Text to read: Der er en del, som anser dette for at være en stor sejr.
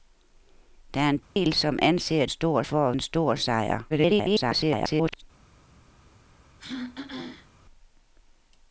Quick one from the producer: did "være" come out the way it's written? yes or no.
no